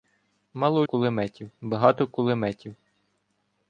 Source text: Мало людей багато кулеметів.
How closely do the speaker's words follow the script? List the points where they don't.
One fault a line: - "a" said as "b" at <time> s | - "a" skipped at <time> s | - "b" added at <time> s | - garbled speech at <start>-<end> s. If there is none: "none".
- "людей" said as "кулеметів" at 0.8 s